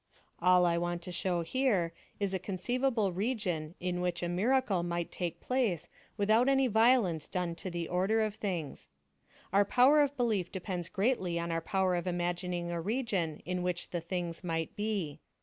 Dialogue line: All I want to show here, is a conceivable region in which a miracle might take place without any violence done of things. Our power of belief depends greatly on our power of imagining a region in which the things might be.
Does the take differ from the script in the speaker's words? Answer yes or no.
yes